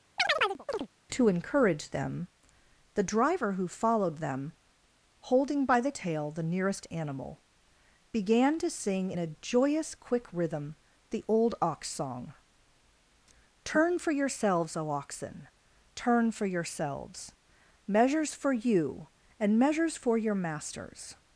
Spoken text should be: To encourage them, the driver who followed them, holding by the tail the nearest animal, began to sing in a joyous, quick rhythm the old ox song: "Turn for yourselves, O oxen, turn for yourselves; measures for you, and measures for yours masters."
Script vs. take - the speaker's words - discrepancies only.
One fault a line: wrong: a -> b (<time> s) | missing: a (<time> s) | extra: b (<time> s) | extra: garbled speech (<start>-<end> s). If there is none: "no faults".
wrong: yours -> your (20.2 s)